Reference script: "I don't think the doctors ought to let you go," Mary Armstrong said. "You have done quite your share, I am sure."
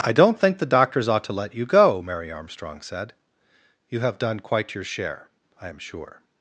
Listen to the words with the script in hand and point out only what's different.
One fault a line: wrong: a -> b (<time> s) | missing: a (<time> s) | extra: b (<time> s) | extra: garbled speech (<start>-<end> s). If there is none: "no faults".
no faults